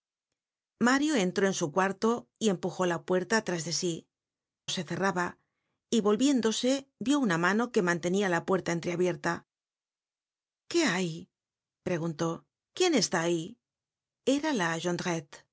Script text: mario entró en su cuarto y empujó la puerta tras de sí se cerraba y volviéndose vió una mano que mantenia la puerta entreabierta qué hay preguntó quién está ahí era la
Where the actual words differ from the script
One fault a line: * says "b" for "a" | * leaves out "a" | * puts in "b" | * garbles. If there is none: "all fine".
all fine